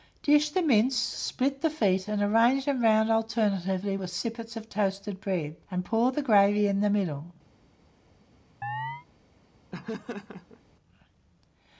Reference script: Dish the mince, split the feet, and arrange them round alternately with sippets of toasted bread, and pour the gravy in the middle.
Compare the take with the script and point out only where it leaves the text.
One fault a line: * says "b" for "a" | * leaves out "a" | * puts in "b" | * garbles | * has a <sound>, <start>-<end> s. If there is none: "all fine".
* has a chirp, 8.6-9.1 s
* has a laugh, 9.7-10.6 s